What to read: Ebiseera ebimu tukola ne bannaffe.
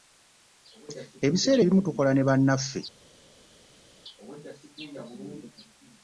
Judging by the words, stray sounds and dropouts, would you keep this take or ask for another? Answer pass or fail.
pass